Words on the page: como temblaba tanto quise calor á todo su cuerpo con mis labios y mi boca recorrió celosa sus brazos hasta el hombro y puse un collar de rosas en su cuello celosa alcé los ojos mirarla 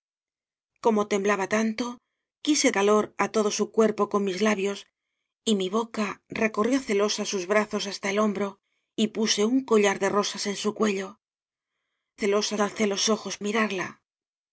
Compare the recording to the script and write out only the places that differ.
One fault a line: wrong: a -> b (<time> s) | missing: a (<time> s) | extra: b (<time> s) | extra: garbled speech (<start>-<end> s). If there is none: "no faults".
no faults